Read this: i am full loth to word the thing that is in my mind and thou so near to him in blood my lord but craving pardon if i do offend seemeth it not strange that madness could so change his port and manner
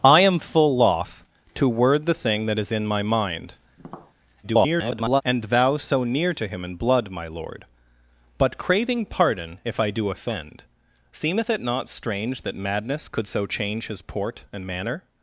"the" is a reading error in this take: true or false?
false